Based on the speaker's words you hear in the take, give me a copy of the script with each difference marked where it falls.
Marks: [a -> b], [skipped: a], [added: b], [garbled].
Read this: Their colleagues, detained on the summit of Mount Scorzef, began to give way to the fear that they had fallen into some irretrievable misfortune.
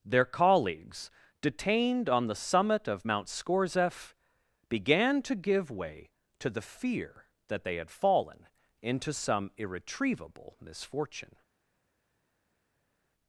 Their colleagues, detained on the summit of Mount Scorzef, began to give way to the fear that they had fallen into some irretrievable misfortune.